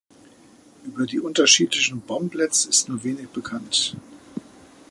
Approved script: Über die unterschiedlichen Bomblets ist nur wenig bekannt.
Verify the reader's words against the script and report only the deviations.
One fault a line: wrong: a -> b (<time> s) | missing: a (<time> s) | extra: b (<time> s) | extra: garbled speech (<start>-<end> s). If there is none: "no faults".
no faults